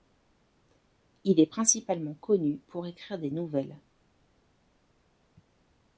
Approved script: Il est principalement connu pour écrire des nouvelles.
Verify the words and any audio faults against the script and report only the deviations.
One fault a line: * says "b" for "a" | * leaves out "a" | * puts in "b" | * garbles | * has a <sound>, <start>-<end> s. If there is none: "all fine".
all fine